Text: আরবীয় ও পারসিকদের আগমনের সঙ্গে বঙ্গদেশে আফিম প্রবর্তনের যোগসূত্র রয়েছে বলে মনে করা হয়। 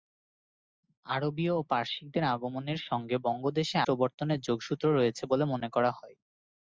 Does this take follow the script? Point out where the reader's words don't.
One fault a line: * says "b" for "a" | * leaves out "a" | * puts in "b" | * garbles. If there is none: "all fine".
* leaves out "আফিম"